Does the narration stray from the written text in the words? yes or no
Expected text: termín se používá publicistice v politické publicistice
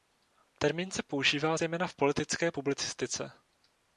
yes